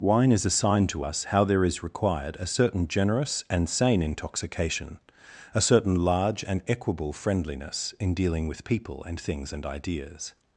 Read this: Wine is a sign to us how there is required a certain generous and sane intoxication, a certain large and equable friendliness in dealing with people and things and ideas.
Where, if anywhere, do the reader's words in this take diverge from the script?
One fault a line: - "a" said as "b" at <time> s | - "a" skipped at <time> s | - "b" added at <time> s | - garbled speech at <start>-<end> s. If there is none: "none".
none